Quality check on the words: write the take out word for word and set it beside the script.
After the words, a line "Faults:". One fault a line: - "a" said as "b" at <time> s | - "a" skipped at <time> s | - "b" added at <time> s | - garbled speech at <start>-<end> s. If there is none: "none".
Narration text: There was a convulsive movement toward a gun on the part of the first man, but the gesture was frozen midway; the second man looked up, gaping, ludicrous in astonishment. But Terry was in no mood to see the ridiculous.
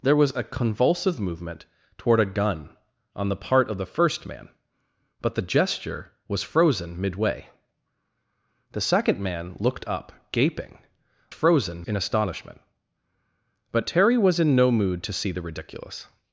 There was a convulsive movement toward a gun on the part of the first man, but the gesture was frozen midway; the second man looked up, gaping, frozen in astonishment. But Terry was in no mood to see the ridiculous.
Faults:
- "ludicrous" said as "frozen" at 11.3 s